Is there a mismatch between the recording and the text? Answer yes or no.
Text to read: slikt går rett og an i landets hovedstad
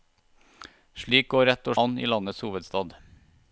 no